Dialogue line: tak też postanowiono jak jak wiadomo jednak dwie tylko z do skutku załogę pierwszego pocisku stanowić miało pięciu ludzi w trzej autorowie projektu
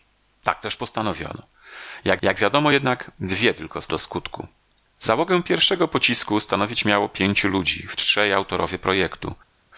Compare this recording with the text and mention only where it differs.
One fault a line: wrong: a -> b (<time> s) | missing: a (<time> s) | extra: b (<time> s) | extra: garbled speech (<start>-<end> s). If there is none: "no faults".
no faults